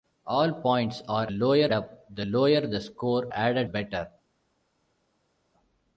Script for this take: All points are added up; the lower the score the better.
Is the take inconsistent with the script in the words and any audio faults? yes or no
yes